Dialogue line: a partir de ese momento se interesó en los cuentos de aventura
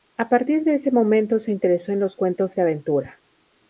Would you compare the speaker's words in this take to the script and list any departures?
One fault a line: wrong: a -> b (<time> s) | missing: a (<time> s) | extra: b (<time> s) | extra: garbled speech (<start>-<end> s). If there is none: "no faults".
no faults